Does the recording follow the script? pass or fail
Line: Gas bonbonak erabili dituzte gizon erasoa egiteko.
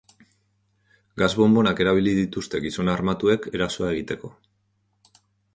fail